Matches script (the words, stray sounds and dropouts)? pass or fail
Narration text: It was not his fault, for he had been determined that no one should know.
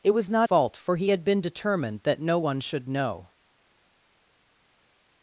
fail